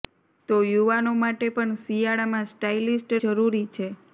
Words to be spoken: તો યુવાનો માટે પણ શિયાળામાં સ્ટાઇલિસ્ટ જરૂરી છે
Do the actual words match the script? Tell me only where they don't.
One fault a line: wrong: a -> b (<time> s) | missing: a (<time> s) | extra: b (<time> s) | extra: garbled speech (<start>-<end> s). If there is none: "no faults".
no faults